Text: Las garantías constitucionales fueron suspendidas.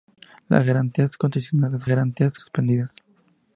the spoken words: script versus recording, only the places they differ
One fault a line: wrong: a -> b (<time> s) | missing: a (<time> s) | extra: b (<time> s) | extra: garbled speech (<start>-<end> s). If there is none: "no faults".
wrong: fueron -> garantías (1.9 s)